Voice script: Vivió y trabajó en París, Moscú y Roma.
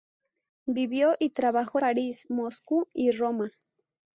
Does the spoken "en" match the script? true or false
false